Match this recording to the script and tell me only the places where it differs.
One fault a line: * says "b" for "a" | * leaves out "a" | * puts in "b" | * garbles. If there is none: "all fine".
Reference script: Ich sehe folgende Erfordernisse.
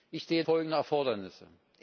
all fine